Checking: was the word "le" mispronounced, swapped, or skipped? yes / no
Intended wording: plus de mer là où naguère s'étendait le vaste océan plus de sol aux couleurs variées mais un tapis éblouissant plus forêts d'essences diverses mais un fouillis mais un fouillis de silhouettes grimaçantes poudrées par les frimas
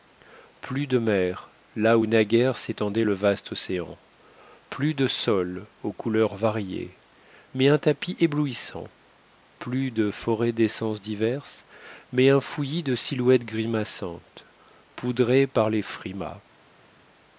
no